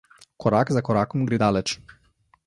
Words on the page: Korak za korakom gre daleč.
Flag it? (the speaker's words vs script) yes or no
no